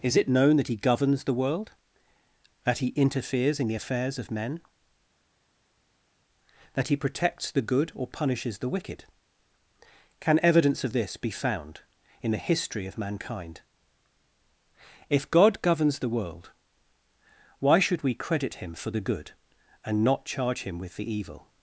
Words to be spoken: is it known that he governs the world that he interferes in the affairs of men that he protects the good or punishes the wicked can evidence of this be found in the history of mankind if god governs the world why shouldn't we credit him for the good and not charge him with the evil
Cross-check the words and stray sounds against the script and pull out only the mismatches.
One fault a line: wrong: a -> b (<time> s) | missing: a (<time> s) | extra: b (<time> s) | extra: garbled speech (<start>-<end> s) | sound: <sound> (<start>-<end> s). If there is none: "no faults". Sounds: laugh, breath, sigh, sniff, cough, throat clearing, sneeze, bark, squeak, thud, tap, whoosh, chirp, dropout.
wrong: shouldn't -> should (17.8 s)